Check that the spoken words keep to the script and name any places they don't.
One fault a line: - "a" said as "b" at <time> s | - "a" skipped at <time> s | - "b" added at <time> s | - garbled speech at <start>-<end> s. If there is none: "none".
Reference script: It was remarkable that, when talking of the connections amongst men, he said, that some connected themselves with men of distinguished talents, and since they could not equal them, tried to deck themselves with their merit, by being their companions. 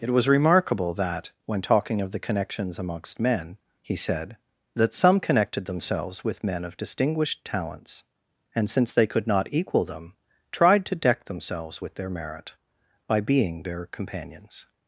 none